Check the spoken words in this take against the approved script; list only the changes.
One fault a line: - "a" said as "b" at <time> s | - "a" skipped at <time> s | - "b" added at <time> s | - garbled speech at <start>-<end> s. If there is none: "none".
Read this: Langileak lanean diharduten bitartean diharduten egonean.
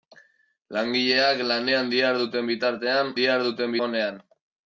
none